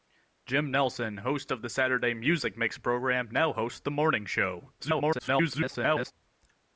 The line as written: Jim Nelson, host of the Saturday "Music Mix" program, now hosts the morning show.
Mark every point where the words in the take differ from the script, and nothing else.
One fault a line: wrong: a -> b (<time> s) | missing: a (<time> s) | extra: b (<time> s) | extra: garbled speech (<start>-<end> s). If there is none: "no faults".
extra: garbled speech (4.8-6.1 s)